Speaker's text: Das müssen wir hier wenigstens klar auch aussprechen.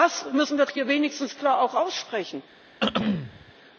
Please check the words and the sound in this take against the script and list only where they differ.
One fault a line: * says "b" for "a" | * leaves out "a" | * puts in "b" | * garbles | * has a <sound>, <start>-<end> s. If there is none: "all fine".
* has a throat clearing, 2.8-3.5 s